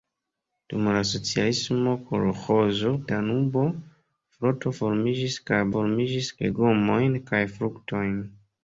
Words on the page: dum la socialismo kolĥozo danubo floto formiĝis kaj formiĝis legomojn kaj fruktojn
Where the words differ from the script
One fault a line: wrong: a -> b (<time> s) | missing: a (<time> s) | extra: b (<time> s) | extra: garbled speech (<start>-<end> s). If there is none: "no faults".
no faults